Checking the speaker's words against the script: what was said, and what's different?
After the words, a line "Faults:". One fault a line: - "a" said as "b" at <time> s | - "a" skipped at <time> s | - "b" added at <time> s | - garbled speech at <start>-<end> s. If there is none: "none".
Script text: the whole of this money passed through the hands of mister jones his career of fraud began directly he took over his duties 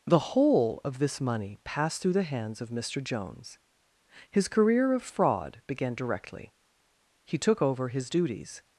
the whole of this money passed through the hands of mister jones his career of fraud began directly he took over his duties
Faults:
none